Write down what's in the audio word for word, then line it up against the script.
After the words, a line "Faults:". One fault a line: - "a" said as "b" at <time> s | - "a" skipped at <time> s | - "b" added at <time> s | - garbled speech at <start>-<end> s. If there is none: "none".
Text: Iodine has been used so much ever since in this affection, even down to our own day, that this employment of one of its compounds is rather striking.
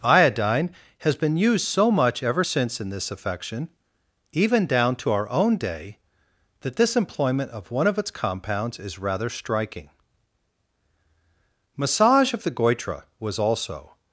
Iodine has been used so much ever since in this affection, even down to our own day, that this employment of one of its compounds is rather striking. Massage of the goitre was also
Faults:
- "Massage of the goitre was also" added at 11.8 s